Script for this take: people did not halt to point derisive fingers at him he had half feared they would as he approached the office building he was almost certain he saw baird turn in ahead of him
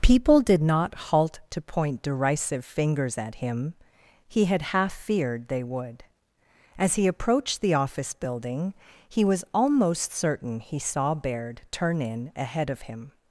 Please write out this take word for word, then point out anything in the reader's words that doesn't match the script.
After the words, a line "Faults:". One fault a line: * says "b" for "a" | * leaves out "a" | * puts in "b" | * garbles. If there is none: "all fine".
people did not halt to point derisive fingers at him he had half feared they would as he approached the office building he was almost certain he saw baird turn in ahead of him
Faults:
all fine